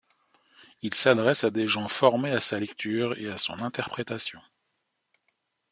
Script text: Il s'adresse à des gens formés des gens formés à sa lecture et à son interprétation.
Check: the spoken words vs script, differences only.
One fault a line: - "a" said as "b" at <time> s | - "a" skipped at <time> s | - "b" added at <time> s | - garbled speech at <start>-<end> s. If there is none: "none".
- "des gens formés" skipped at 2.3 s